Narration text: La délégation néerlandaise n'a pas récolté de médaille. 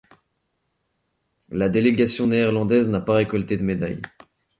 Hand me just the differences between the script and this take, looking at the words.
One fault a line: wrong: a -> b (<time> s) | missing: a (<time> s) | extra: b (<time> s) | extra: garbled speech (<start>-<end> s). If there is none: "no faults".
no faults